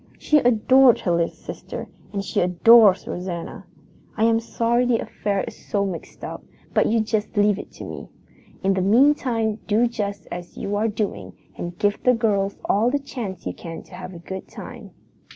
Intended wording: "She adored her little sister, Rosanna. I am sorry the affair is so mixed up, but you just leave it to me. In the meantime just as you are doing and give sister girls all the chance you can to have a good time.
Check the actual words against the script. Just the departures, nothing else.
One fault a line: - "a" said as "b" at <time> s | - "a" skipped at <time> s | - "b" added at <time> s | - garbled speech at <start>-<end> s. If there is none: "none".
- "and she adores" added at 2.1 s
- "do" added at 9.7 s
- "sister" said as "the" at 12.0 s